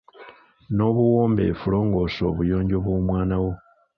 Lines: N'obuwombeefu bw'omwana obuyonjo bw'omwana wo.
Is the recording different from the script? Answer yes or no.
yes